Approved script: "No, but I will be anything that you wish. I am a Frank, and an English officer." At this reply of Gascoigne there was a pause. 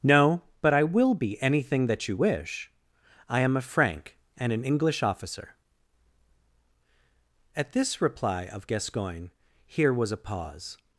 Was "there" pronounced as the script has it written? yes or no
no